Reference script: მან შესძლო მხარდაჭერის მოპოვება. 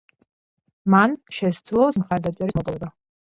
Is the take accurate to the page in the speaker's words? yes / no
yes